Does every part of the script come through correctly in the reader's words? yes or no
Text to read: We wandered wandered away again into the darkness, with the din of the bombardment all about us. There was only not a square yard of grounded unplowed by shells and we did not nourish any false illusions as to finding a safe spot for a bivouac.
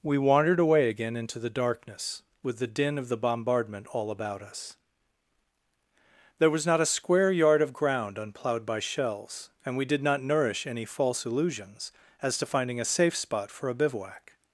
no